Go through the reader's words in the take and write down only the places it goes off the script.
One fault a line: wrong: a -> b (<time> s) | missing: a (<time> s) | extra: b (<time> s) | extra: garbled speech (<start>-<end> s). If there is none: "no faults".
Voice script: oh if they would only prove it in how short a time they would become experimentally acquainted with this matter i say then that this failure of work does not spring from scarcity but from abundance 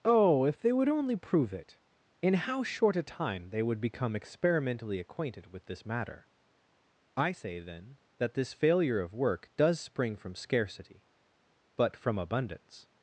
missing: not (9.8 s)